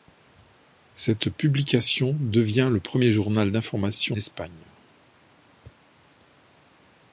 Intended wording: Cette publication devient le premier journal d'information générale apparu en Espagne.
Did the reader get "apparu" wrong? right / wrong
wrong